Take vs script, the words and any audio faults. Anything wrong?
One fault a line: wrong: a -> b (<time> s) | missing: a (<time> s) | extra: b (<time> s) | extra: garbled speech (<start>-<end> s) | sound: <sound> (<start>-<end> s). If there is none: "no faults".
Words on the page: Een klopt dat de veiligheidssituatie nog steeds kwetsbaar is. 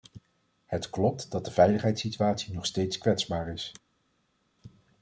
wrong: Een -> Het (0.7 s)